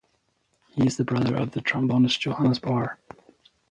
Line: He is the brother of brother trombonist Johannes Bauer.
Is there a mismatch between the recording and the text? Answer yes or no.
yes